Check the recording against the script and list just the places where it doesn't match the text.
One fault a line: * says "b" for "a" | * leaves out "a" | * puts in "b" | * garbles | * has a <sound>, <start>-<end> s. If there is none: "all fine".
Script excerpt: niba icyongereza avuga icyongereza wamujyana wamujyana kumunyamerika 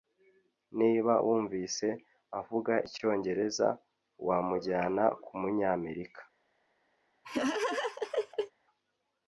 * says "wumvise" for "icyongereza"
* leaves out "wamujyana"
* has a laugh, 7.2-8.5 s